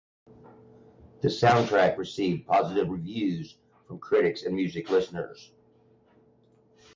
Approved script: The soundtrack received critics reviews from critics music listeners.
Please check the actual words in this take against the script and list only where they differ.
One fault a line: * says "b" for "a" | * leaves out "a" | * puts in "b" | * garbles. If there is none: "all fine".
* says "positive" for "critics"
* puts in "and"